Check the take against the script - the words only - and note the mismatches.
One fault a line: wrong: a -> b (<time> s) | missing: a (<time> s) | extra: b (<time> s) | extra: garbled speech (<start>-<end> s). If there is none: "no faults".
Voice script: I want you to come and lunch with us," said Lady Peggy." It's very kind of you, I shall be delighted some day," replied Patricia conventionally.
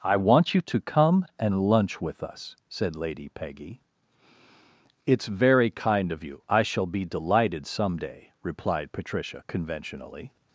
no faults